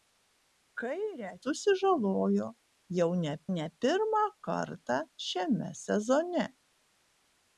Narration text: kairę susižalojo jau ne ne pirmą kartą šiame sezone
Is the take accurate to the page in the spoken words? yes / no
yes